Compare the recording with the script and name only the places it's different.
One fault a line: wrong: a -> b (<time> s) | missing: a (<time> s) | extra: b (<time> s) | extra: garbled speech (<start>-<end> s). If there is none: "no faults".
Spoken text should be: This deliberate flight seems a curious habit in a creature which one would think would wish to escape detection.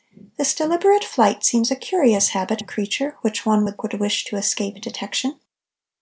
missing: in (2.6 s)
missing: think (3.8 s)